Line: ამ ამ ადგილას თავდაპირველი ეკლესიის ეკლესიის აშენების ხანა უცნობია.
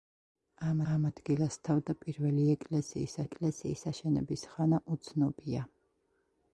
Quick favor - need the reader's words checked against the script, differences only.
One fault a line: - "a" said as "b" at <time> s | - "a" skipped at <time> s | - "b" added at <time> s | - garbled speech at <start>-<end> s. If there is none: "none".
none